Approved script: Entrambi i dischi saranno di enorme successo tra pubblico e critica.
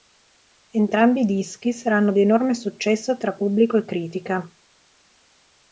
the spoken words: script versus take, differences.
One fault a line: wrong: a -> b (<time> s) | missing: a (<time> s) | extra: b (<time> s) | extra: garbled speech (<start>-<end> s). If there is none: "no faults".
no faults